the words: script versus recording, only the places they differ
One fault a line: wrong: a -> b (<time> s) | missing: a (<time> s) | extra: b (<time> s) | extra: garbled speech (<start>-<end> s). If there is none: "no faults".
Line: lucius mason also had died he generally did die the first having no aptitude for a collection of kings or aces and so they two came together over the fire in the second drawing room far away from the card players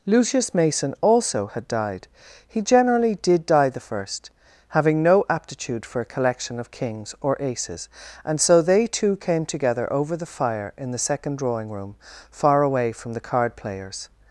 no faults